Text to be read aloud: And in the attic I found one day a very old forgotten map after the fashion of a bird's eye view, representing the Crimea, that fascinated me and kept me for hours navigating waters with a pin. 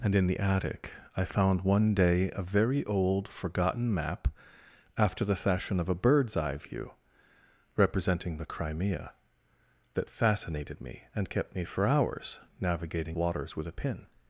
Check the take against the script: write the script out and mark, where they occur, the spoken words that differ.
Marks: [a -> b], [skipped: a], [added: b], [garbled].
And in the attic I found one day a very old forgotten map after the fashion of a bird's eye view, representing the Crimea, that fascinated me and kept me for hours navigating waters with a pin.